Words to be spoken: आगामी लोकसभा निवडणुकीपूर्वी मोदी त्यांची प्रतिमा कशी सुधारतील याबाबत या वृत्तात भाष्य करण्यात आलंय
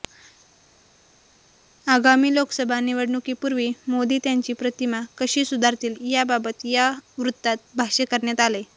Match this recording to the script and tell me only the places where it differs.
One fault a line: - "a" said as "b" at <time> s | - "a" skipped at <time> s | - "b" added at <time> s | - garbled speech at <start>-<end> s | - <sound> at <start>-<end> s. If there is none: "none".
none